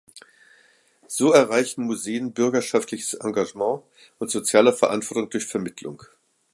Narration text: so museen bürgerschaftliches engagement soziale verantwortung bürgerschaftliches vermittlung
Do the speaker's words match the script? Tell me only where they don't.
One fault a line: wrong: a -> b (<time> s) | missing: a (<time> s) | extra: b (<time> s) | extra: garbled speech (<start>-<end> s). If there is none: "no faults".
extra: erreichen (1.3 s)
extra: und (4.2 s)
wrong: bürgerschaftliches -> durch (5.3 s)